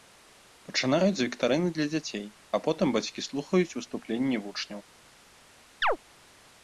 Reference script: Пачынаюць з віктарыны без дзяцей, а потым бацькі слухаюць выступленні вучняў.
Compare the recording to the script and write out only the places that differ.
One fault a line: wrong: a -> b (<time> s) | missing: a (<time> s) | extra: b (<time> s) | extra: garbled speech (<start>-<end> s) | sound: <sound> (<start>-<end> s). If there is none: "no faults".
wrong: без -> для (1.8 s)
sound: chirp (5.8-6.0 s)